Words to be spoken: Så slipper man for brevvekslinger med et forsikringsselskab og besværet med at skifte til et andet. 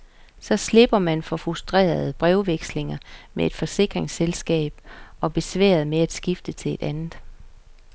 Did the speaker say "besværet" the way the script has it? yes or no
yes